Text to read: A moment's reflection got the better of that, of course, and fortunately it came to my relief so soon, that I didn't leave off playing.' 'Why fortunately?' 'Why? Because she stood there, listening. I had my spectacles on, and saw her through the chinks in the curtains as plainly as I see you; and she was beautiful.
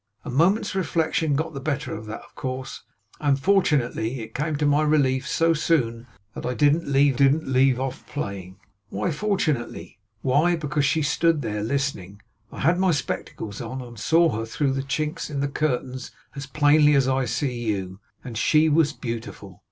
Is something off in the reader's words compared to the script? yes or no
yes